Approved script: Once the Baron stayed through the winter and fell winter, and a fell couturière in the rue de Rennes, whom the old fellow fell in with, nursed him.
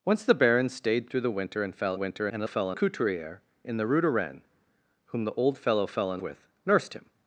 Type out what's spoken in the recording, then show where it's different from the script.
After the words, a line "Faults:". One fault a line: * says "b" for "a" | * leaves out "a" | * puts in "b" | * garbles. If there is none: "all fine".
Once the Baron stayed through the winter and fell winter, and a fell couturière in the rue de Rennes, whom the old fellow fell in with, nursed him.
Faults:
all fine